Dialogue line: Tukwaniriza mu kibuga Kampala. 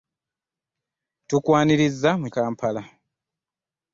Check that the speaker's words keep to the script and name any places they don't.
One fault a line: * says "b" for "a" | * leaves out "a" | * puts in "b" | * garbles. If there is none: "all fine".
* leaves out "kibuga"